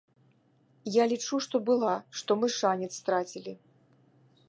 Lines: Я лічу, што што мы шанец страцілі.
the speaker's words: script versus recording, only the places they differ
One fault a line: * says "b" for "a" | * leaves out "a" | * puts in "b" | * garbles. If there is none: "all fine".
* puts in "была"